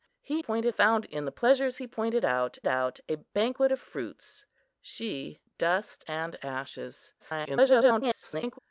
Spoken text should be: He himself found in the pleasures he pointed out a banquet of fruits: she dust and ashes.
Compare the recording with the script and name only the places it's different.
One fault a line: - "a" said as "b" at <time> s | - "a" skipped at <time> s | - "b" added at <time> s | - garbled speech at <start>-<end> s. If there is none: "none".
- "himself" said as "pointed" at 0.4 s
- "out" added at 2.6 s
- garbled speech at 7.2-8.6 s